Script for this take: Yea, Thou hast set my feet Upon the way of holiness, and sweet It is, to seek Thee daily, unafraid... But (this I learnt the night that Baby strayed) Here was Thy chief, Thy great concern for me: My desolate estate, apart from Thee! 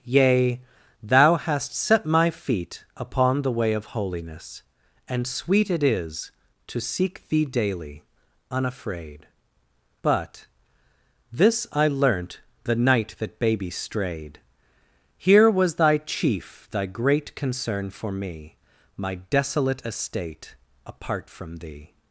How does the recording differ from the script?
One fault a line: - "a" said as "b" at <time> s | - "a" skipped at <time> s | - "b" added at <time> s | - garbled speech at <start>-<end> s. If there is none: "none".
none